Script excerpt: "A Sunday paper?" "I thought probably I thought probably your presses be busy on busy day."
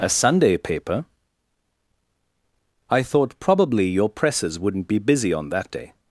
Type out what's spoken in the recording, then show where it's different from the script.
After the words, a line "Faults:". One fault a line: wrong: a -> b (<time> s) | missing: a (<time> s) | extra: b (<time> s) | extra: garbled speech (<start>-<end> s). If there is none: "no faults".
"A Sunday paper?" "I thought probably your presses wouldn't be busy on that day."
Faults:
missing: I thought probably (3.9 s)
extra: wouldn't (4.6 s)
wrong: busy -> that (5.5 s)